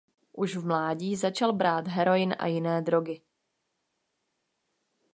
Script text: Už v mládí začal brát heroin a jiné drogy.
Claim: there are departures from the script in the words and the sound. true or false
false